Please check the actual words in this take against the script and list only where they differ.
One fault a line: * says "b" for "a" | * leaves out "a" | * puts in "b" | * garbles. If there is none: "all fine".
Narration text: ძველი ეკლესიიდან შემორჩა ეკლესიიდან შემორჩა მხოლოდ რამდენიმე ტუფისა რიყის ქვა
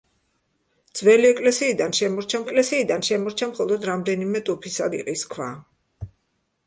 all fine